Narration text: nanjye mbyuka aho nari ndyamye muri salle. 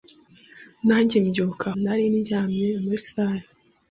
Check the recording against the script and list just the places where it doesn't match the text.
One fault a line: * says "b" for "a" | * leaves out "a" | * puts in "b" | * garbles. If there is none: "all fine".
* leaves out "aho"